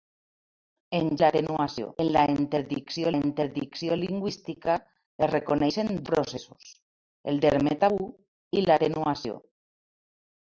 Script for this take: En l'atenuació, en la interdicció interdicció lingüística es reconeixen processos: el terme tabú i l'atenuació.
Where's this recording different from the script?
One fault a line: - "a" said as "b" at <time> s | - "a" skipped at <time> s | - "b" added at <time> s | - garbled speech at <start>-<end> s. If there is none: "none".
none